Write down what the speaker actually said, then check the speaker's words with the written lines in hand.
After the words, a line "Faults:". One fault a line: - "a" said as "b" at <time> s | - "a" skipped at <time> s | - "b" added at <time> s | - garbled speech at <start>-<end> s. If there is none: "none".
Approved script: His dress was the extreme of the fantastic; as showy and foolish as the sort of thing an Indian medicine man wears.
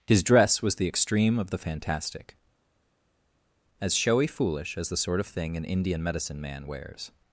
His dress was the extreme of the fantastic; as showy foolish as the sort of thing an Indian medicine man wears.
Faults:
- "and" skipped at 4.3 s